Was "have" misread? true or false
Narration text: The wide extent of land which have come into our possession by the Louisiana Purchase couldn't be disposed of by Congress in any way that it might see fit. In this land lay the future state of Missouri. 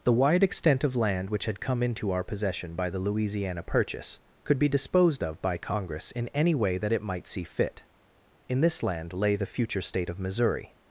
true